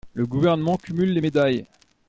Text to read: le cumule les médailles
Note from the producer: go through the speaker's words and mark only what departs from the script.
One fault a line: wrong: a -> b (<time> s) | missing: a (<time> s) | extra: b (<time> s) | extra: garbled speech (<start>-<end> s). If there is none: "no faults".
extra: gouvernement (0.2 s)